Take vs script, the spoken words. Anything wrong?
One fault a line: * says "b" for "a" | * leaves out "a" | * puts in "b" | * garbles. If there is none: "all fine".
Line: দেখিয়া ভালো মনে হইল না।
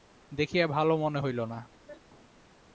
all fine